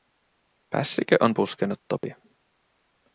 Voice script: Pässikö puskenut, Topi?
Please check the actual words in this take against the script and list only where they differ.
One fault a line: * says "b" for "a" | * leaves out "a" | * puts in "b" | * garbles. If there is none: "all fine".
* puts in "on"